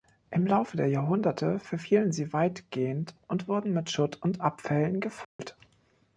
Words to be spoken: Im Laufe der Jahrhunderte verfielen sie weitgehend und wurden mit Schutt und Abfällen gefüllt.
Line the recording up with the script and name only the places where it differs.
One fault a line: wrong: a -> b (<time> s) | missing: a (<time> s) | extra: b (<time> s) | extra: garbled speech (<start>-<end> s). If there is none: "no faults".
no faults